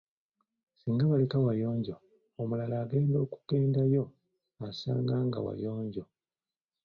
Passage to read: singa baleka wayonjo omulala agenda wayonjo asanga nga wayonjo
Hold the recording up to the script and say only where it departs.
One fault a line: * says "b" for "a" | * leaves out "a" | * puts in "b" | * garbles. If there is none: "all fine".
* says "okugendayo" for "wayonjo"